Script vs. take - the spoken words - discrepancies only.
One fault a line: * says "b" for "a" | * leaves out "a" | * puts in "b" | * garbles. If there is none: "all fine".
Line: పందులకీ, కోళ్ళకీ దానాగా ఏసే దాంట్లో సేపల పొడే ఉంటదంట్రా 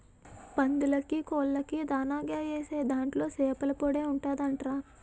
all fine